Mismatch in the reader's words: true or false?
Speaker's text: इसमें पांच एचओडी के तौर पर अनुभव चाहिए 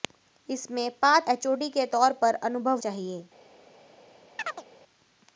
false